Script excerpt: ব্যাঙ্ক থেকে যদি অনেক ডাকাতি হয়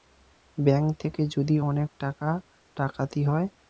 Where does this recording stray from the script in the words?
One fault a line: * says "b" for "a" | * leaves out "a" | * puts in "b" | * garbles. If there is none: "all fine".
* puts in "টাকা"